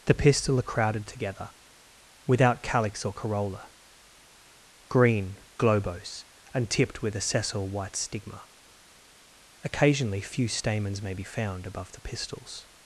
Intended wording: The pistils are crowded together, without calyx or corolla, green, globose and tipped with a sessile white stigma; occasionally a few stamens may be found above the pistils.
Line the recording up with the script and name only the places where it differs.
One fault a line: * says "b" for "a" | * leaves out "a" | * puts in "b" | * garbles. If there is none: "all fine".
* says "pistil" for "pistils"
* leaves out "a"